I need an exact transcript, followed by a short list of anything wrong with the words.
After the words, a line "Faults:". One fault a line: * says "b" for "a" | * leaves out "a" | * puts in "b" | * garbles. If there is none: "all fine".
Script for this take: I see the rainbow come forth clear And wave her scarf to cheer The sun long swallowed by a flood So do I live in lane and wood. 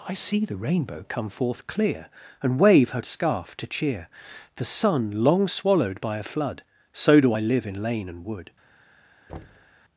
I see the rainbow come forth clear And wave her scarf to cheer The sun long swallowed by a flood So do I live in lane and wood.
Faults:
all fine